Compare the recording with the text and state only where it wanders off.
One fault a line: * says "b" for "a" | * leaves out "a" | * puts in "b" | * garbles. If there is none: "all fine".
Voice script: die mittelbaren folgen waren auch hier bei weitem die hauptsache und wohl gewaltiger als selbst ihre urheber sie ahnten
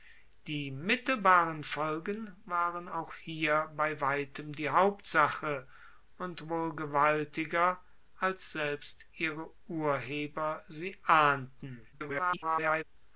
* garbles